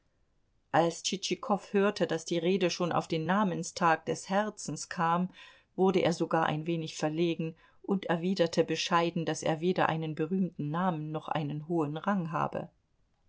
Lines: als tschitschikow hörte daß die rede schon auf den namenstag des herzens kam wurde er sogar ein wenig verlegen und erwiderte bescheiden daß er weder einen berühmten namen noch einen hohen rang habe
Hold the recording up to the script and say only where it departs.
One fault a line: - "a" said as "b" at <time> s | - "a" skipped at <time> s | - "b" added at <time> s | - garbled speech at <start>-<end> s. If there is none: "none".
none